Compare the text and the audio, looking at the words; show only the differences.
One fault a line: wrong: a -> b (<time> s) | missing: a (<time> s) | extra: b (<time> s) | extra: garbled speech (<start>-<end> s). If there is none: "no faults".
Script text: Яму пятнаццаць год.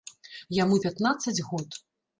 no faults